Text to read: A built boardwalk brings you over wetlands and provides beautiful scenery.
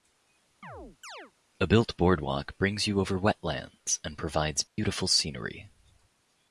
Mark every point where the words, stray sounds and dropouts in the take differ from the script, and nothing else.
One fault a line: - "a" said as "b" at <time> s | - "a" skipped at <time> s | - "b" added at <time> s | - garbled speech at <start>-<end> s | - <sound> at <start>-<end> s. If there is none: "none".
- chirp at 0.6-1.3 s
- dropout at 4.7-4.8 s